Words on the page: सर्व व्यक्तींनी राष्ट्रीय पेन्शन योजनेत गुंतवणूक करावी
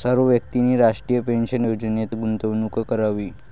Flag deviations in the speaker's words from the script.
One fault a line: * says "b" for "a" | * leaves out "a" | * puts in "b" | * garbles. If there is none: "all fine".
all fine